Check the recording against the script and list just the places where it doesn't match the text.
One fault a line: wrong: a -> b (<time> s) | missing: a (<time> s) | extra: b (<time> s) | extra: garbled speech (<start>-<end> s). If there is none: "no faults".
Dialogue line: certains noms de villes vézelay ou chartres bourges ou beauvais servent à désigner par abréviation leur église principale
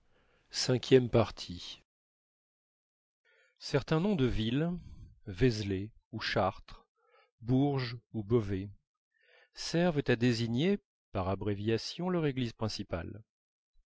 no faults